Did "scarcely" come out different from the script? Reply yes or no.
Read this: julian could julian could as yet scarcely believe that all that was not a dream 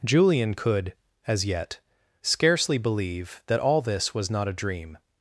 no